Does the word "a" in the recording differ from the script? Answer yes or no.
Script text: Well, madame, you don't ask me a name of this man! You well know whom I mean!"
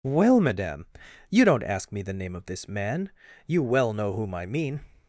yes